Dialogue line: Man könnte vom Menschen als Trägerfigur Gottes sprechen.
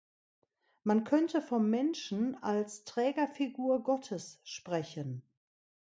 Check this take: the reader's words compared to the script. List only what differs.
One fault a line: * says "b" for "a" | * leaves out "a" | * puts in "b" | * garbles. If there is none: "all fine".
all fine